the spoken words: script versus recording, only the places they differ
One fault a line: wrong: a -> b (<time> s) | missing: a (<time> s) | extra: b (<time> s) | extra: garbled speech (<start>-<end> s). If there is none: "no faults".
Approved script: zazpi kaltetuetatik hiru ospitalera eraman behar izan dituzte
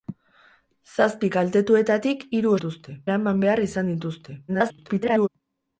wrong: ospitalera -> dituzte (2.6 s)
extra: garbled speech (4.5-5.3 s)